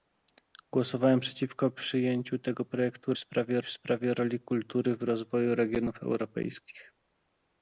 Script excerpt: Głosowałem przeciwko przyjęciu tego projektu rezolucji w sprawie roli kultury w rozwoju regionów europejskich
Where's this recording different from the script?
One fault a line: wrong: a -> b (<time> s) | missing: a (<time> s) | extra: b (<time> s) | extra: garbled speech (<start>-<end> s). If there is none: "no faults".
wrong: rezolucji -> sprawie (3.2 s)